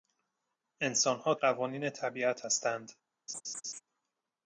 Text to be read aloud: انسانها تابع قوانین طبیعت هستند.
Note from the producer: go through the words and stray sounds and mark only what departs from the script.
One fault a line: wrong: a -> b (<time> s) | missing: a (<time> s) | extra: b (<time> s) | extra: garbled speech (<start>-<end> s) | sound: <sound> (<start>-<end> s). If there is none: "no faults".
missing: تابع (1.4 s)
sound: laugh (3.3-3.8 s)